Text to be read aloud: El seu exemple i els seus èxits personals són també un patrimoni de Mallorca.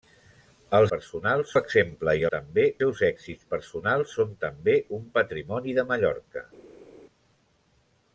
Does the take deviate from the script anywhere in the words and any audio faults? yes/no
yes